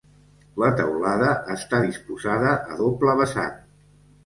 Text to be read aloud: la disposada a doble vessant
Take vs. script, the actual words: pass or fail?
fail